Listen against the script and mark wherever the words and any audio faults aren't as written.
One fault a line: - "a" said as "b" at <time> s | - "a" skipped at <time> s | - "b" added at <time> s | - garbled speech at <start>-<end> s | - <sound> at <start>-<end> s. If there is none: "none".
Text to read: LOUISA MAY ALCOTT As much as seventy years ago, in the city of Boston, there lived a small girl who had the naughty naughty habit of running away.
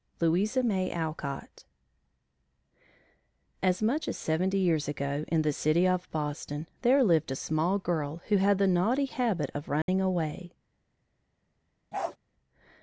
- "naughty" skipped at 9.1 s
- dropout at 9.8-9.9 s
- bark at 11.9-12.2 s